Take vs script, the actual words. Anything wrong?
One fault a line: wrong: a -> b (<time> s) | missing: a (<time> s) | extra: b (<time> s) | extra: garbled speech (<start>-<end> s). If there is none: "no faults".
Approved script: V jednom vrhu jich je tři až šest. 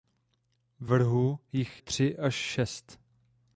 missing: jednom (0.9 s)
missing: je (1.8 s)